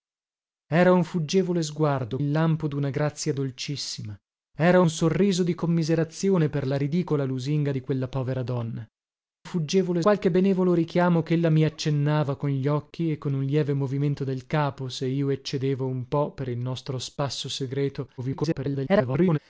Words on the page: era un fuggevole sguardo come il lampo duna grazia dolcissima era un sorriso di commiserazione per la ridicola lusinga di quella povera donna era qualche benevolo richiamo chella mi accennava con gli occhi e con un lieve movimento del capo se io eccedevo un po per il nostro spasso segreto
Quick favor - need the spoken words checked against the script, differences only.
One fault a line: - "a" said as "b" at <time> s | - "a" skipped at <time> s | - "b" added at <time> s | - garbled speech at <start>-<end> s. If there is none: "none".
- "come" skipped at 2.2 s
- "era" said as "fuggevole" at 9.4 s
- garbled speech at 18.2-19.4 s